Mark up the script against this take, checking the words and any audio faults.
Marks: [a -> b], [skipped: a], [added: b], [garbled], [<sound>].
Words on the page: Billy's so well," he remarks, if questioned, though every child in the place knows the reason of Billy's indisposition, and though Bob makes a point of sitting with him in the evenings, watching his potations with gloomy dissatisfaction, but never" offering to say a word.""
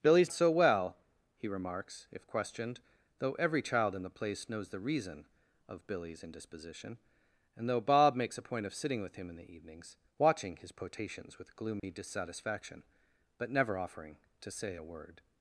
Billy's so well," he remarks, if questioned, though every child in the place knows the reason of Billy's indisposition, and though Bob makes a point of sitting with him in the evenings, watching his potations with gloomy [dropout] dissatisfaction, but never" offering to say a word.""